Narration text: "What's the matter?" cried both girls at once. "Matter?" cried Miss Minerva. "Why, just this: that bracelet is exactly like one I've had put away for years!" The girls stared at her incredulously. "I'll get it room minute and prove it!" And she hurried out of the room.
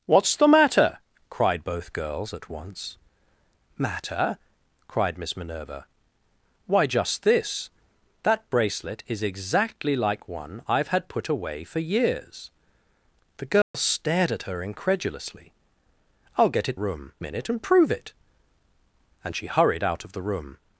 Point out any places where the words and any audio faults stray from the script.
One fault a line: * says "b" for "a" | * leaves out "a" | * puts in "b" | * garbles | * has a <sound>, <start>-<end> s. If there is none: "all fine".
* has a dropout, 13.6-13.7 s